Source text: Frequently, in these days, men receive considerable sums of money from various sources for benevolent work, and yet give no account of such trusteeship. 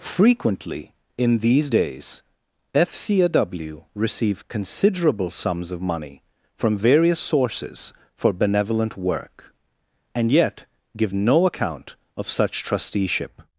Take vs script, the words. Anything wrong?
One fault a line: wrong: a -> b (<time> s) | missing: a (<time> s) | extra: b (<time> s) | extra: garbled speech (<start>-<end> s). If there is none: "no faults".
wrong: men -> fcaw (2.7 s)